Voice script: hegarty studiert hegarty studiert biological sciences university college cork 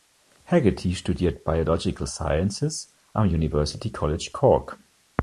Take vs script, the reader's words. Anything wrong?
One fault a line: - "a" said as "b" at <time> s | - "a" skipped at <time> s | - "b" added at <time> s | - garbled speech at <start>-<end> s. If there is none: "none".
- "hegarty studiert" skipped at 1.4 s
- "am" added at 3.1 s